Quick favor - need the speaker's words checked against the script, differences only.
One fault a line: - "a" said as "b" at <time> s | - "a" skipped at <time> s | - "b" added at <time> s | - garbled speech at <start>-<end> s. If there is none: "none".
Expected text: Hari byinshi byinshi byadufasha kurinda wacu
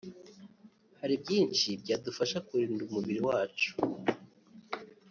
- "byinshi" skipped at 1.7 s
- "umubiri" added at 2.9 s